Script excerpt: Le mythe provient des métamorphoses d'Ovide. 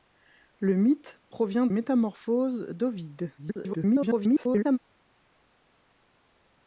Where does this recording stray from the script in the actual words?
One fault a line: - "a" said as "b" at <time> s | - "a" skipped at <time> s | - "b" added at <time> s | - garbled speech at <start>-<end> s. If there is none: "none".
- "des" skipped at 1.7 s
- garbled speech at 3.4-4.8 s